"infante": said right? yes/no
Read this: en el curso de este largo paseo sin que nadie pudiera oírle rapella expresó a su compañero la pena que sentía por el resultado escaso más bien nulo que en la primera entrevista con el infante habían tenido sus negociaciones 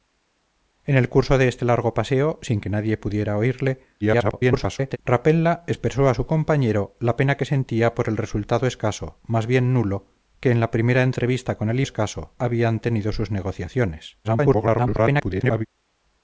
no